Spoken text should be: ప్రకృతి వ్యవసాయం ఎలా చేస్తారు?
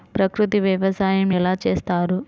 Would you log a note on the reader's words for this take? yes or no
no